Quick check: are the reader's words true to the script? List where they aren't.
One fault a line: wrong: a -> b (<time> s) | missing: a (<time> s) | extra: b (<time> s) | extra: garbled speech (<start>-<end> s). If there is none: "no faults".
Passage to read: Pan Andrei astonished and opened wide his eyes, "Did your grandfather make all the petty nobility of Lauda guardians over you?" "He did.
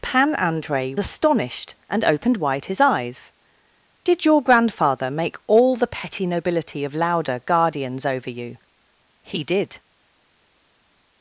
no faults